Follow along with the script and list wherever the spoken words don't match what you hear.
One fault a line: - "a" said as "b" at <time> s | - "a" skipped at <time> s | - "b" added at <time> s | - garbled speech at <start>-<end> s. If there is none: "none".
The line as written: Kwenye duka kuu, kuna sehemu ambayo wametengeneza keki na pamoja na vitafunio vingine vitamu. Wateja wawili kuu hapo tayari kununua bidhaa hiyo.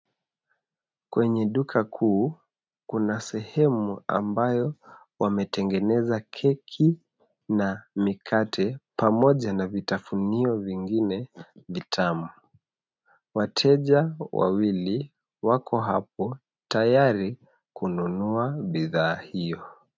- "mikate" added at 8.0 s
- "kuu" said as "wako" at 15.4 s